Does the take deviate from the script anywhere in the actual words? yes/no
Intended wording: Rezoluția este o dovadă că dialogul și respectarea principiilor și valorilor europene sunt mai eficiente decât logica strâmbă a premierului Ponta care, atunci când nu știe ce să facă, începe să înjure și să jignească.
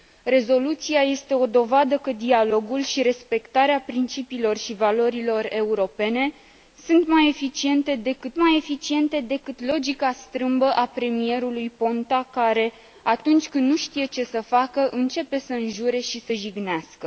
yes